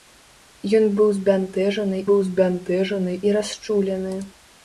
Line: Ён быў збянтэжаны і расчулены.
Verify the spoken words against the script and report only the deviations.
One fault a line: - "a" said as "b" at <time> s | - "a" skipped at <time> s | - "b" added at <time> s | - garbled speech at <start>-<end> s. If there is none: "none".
- "быў збянтэжаны" added at 2.1 s